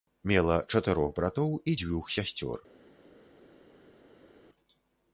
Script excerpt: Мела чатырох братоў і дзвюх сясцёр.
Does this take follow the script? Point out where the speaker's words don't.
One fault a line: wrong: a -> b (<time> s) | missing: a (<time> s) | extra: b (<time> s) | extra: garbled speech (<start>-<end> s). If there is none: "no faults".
no faults